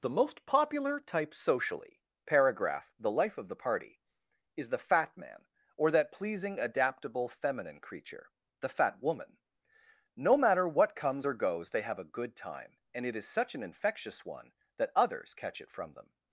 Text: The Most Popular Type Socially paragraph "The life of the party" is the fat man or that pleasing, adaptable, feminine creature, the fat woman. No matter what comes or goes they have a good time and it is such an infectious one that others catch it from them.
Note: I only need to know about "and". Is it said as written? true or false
true